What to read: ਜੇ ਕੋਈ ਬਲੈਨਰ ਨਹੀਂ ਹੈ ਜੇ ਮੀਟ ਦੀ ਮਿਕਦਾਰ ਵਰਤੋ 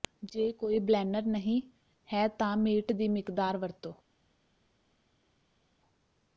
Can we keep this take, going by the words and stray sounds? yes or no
no